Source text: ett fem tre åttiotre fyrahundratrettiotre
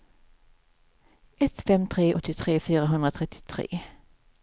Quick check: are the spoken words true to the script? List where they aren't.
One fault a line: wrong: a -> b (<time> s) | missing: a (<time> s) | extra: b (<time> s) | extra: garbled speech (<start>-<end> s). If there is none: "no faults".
no faults